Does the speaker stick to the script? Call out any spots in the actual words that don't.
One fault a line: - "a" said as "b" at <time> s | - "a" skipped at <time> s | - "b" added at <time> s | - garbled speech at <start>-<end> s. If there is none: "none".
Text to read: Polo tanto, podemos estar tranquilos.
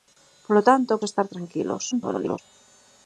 - "podemos" skipped at 1.0 s
- garbled speech at 1.9-2.4 s